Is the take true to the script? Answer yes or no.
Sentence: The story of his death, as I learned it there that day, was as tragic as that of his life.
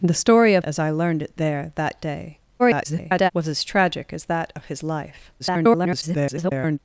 no